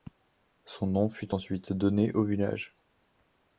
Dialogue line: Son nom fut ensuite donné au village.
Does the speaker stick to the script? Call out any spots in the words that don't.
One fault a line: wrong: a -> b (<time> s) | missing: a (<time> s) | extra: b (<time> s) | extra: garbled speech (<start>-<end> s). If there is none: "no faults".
no faults